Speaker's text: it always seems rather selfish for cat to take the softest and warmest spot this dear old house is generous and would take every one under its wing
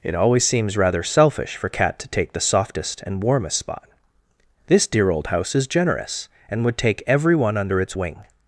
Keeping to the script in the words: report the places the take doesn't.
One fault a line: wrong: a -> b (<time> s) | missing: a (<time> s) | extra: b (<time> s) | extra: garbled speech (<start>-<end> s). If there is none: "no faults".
no faults